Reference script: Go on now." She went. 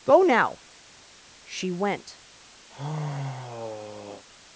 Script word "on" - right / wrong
wrong